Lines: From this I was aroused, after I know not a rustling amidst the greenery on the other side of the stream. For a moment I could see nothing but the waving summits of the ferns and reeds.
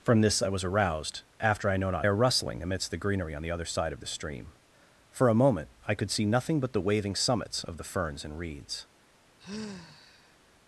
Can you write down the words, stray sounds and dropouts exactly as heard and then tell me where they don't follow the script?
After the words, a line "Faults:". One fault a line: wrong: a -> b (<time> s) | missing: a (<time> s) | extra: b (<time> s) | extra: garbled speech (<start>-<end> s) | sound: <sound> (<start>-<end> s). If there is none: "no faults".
From this I was aroused, after I know not a rustling amidst the greenery on the other side of the stream. For a moment I could see nothing but the waving summits of the ferns and reeds.
Faults:
sound: sigh (9.4-10.4 s)